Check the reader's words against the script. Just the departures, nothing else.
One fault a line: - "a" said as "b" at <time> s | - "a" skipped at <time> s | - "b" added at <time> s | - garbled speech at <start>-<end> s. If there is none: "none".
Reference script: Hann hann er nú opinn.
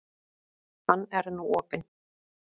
- "hann" skipped at 1.1 s